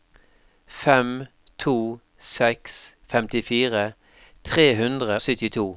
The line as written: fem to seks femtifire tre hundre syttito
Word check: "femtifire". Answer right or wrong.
right